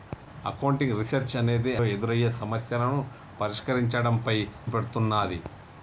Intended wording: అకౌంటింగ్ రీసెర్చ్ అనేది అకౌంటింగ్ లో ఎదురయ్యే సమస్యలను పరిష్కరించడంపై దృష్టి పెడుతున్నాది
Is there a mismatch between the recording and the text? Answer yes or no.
yes